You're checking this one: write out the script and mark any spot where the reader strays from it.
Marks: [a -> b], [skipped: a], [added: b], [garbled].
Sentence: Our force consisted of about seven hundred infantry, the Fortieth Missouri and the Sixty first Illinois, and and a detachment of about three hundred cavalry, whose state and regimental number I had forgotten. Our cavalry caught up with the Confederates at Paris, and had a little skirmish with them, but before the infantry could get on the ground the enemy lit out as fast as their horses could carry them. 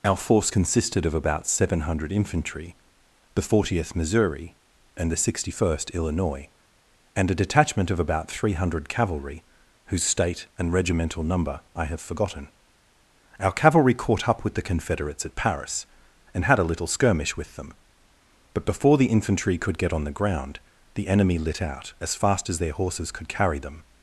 Our force consisted of about seven hundred infantry, the Fortieth Missouri and the Sixty first Illinois, and [skipped: and] a detachment of about three hundred cavalry, whose state and regimental number I [had -> have] forgotten. Our cavalry caught up with the Confederates at Paris, and had a little skirmish with them, but before the infantry could get on the ground the enemy lit out as fast as their horses could carry them.